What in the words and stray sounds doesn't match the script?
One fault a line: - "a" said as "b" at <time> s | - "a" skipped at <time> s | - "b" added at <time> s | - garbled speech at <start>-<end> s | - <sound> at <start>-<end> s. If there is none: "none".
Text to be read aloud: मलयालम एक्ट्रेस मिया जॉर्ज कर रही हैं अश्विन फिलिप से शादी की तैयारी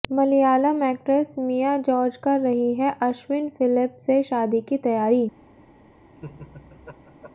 - laugh at 6.1-7.3 s